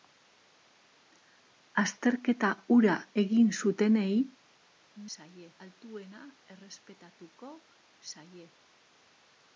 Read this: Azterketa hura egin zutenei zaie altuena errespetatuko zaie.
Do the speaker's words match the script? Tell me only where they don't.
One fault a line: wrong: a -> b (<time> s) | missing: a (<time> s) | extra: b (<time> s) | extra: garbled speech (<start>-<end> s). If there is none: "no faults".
no faults